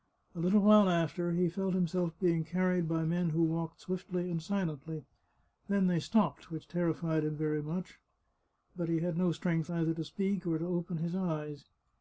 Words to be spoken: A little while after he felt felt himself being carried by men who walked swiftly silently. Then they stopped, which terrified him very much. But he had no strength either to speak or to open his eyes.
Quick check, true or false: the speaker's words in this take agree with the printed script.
false